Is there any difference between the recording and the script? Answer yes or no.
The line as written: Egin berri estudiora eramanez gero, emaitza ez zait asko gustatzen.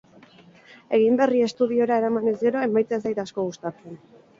no